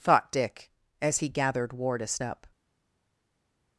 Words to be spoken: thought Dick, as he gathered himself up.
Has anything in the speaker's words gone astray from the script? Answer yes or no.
yes